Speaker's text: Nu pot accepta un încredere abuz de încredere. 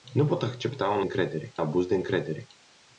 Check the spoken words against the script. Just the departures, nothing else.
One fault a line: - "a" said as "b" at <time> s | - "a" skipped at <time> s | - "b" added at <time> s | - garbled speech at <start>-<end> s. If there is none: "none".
none